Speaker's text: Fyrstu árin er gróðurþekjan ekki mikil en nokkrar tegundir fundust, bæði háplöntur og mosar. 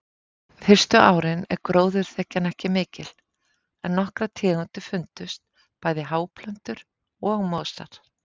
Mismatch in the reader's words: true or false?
false